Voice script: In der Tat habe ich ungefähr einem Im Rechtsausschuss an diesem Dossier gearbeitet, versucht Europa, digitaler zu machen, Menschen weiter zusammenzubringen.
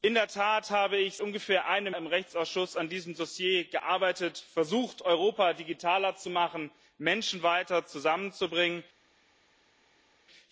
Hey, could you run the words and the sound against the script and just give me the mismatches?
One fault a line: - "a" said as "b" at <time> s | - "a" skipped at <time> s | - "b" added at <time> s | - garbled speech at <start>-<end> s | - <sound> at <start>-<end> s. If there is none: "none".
none